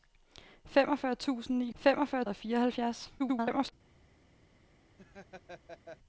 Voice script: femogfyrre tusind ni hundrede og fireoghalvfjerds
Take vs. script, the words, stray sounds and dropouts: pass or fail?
fail